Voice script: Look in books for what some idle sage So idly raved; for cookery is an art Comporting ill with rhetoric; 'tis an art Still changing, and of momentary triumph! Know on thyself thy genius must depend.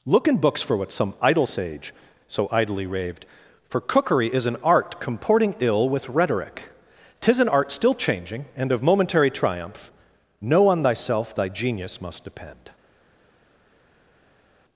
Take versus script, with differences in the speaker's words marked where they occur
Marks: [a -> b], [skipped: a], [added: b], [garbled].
Look in books for what some idle sage So idly raved; for cookery is an art Comporting ill with rhetoric; 'tis an art Still changing, and of momentary triumph! Know on thyself thy genius must depend.